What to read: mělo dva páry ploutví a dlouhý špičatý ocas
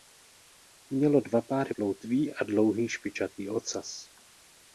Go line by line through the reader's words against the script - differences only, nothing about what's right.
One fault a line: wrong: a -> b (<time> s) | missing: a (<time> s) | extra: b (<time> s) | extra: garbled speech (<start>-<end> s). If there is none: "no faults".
no faults